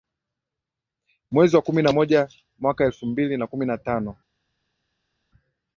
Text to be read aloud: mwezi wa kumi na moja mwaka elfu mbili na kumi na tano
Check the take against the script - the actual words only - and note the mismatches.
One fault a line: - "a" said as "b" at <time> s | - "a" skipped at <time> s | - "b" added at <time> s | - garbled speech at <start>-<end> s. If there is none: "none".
none